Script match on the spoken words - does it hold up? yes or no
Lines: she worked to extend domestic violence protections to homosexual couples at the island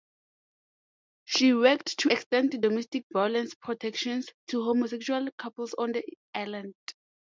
no